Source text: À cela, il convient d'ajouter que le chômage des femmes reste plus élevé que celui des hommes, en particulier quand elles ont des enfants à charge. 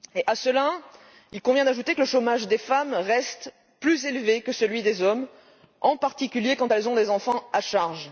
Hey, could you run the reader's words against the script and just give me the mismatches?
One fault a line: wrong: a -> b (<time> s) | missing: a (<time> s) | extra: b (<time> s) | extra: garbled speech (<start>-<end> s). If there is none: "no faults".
no faults